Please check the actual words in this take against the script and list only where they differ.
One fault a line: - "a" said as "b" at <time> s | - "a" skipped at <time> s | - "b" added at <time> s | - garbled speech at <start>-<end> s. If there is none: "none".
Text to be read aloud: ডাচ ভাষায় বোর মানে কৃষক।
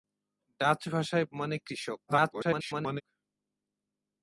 - "বোর" skipped at 1.2 s
- garbled speech at 2.1-3.0 s